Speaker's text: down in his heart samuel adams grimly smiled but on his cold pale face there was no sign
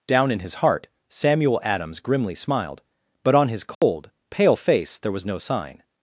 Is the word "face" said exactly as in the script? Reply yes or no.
yes